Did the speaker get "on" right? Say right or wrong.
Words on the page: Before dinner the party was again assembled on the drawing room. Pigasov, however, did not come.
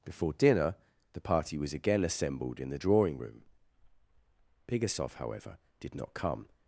wrong